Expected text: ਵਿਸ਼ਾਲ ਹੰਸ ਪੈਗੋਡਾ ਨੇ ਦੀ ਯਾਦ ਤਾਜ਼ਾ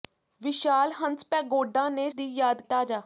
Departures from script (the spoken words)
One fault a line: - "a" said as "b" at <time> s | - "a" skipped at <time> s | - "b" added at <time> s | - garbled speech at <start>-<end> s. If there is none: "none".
none